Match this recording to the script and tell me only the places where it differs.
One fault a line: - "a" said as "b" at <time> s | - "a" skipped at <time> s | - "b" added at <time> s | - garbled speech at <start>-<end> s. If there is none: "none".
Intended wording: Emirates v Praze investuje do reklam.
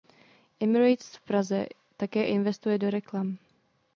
- "také" added at 2.0 s